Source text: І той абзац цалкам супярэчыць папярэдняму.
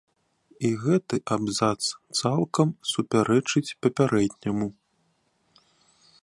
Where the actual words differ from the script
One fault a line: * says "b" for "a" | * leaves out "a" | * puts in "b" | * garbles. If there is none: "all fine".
* says "гэты" for "той"